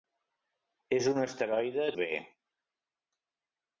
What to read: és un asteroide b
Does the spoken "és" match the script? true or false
true